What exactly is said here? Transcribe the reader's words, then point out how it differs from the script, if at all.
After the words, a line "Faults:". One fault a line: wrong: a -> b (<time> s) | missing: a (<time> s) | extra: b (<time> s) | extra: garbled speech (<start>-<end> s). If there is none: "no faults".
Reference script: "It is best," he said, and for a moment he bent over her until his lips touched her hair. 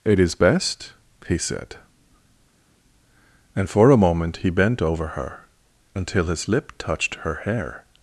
"It is best," he said, and for a moment he bent over her until his lip touched her hair.
Faults:
wrong: lips -> lip (6.5 s)